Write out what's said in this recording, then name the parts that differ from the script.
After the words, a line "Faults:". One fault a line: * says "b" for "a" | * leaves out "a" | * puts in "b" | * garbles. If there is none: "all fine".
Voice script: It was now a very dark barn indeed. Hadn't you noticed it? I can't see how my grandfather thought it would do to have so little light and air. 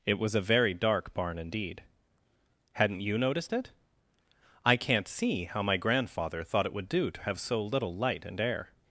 It was a very dark barn indeed. Hadn't you noticed it? I can't see how my grandfather thought it would do to have so little light and air.
Faults:
* leaves out "now"